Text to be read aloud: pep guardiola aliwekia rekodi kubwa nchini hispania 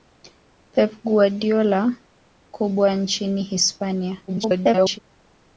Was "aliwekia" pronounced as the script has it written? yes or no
no